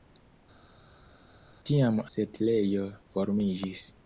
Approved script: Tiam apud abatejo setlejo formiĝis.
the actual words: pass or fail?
fail